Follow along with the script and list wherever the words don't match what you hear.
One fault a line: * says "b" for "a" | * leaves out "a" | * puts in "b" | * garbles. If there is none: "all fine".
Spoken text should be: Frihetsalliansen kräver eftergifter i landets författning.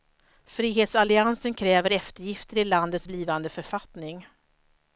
* puts in "blivande"